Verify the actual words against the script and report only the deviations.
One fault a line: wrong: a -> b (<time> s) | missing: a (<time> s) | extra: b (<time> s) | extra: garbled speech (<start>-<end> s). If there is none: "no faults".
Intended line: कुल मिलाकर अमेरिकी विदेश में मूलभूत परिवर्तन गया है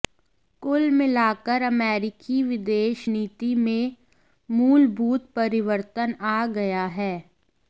extra: नीति (3.1 s)
extra: आ (6.2 s)